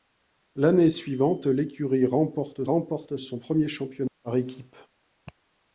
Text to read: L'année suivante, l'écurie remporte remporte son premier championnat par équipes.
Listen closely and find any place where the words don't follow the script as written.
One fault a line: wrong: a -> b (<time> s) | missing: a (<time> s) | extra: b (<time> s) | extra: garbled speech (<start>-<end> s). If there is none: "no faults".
no faults